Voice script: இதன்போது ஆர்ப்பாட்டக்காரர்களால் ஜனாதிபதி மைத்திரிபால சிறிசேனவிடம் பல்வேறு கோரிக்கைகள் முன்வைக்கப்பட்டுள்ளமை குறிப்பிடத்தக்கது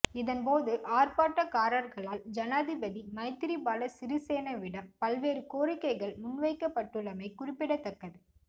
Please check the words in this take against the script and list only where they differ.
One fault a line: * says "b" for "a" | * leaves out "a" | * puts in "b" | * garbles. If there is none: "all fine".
all fine